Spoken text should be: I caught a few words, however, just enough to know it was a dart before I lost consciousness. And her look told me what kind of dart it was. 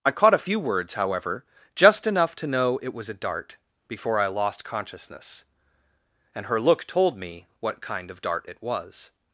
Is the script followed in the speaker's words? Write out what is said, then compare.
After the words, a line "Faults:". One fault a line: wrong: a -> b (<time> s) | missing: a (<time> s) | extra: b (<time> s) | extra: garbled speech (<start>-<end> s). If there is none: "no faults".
I caught a few words, however, just enough to know it was a dart before I lost consciousness. And her look told me what kind of dart it was.
Faults:
no faults